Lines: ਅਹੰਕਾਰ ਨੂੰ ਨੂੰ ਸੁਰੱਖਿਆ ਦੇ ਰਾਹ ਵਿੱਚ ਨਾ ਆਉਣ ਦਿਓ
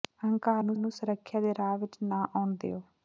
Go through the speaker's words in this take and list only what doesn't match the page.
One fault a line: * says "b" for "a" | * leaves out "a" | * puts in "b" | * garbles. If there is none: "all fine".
all fine